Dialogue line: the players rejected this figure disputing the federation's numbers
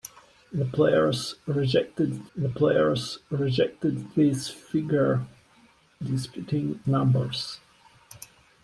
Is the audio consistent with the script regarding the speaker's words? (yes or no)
no